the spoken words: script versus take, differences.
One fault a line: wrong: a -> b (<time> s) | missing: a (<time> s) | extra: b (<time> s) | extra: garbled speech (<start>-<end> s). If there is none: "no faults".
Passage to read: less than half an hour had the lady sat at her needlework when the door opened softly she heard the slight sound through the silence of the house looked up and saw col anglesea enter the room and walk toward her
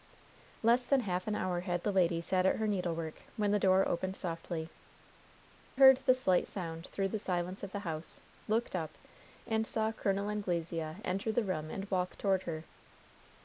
missing: she (4.7 s)